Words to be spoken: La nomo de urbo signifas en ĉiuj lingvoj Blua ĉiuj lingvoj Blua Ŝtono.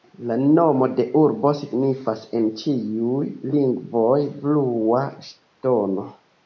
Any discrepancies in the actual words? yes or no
yes